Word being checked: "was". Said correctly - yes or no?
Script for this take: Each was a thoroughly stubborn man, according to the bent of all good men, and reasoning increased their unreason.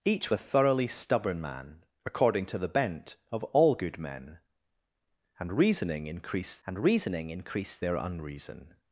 no